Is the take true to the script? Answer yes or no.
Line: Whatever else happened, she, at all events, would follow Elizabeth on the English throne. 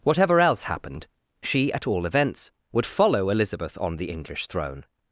yes